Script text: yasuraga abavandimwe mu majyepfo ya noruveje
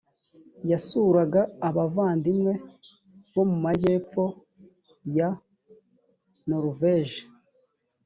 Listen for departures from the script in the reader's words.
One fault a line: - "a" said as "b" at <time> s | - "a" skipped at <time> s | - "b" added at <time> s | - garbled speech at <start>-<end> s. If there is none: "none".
- "bo" added at 3.3 s